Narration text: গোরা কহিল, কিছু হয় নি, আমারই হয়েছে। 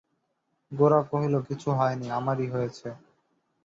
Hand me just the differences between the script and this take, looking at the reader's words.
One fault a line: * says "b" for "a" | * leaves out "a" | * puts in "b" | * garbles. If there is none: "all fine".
all fine